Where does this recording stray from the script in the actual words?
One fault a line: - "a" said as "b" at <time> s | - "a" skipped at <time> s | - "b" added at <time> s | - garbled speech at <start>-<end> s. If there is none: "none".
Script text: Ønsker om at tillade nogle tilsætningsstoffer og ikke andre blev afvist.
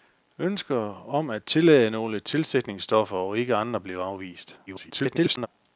- garbled speech at 4.7-5.5 s